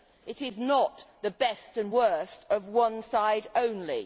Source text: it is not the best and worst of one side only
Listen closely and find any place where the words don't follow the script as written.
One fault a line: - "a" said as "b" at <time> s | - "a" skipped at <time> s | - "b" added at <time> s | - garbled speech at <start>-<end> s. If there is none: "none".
none